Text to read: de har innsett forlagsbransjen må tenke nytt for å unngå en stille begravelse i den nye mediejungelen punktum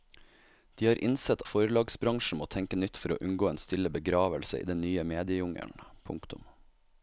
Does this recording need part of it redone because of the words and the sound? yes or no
no